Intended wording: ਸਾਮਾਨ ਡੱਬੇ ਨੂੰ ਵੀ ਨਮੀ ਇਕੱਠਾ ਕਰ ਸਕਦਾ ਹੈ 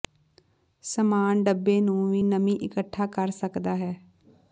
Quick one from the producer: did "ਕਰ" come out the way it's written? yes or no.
yes